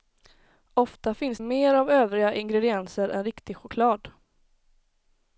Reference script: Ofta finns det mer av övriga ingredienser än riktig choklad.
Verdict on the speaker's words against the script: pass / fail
fail